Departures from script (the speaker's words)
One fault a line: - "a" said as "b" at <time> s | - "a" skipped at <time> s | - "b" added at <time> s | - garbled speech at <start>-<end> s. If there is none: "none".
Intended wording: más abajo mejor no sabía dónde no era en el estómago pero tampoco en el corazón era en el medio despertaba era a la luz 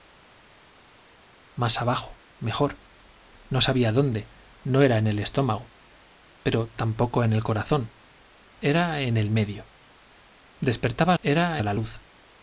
none